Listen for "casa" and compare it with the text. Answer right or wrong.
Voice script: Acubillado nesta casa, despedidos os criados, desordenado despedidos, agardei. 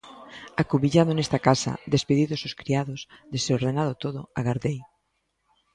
right